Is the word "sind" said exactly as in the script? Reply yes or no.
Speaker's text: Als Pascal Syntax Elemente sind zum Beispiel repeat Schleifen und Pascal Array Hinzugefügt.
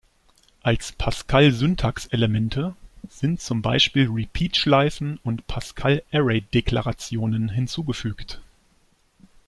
yes